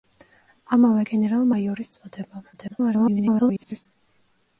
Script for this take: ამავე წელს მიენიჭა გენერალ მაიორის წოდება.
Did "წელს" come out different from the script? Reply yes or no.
yes